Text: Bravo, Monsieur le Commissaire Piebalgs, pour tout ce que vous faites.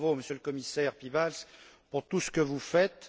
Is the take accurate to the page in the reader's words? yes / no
yes